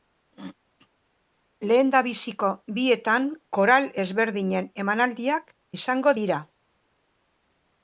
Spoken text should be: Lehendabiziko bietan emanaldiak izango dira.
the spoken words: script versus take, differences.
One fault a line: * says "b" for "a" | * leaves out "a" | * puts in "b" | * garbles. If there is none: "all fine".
* puts in "koral ezberdinen"